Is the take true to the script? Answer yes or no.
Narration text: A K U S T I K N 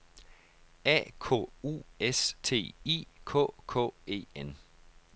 no